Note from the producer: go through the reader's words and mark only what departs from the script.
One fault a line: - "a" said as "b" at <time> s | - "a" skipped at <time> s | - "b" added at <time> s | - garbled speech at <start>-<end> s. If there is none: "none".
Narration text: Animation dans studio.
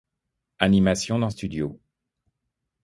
none